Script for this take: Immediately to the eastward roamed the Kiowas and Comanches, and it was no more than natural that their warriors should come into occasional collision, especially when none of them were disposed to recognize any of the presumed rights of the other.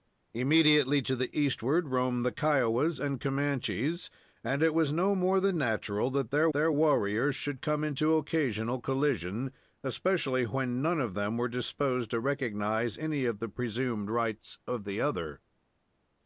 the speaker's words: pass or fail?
fail